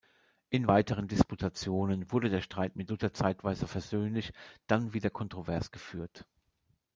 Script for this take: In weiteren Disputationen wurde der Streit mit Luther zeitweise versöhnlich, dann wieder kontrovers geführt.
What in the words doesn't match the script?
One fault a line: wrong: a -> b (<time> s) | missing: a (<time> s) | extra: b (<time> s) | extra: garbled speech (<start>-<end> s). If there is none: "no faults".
no faults